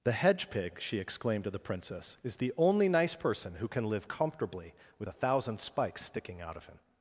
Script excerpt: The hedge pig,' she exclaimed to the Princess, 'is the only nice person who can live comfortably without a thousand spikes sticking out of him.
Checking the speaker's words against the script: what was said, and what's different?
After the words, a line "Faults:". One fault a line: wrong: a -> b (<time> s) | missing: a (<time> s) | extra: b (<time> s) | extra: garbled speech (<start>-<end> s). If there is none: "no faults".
The hedge pig,' she exclaimed to the Princess, 'is the only nice person who can live comfortably with a thousand spikes sticking out of him.
Faults:
wrong: without -> with (5.0 s)